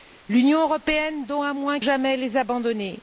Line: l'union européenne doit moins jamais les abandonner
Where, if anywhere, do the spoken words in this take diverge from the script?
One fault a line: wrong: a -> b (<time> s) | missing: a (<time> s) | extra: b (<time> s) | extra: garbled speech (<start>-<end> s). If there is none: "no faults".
no faults